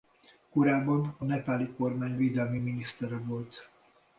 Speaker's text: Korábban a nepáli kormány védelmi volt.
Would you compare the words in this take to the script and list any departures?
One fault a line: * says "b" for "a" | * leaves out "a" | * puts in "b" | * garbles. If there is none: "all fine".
* puts in "minisztere"